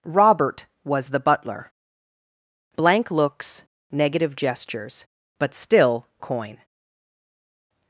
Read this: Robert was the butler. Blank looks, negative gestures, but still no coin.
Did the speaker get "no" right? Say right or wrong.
wrong